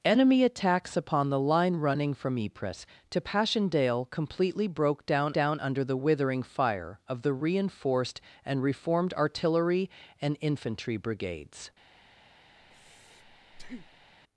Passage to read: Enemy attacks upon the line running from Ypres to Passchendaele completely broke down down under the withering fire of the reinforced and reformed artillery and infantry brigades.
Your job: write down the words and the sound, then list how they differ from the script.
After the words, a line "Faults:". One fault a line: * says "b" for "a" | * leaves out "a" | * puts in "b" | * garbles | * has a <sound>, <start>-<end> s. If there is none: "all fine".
Enemy attacks upon the line running from Ypres to Passchendaele completely broke down down under the withering fire of the reinforced and reformed artillery and infantry brigades.
Faults:
* has a breath, 12.6-14.1 s